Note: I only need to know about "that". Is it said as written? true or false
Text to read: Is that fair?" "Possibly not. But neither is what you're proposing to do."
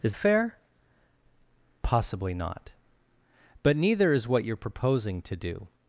false